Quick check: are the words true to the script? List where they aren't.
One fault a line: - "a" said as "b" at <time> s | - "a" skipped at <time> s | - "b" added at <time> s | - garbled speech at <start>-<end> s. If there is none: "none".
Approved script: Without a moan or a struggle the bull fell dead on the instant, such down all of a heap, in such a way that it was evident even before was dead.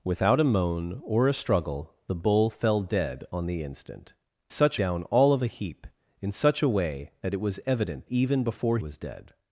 none